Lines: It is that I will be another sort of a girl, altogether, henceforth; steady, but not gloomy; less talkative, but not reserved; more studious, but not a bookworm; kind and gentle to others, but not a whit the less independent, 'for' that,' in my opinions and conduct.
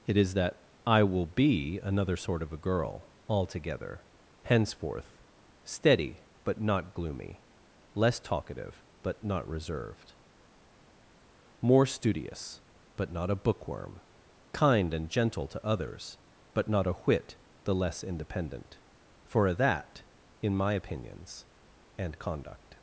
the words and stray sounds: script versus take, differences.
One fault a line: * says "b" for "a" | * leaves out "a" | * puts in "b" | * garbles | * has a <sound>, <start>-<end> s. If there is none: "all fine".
all fine